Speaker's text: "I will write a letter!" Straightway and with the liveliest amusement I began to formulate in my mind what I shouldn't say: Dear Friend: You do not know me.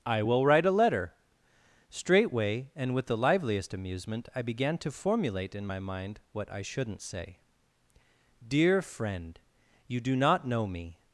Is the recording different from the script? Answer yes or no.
no